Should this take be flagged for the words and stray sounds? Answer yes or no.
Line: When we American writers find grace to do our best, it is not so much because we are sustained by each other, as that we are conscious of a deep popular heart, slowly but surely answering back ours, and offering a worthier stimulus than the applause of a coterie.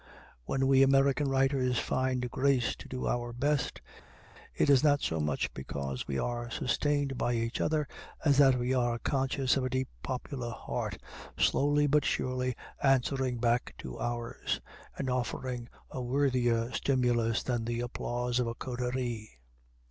yes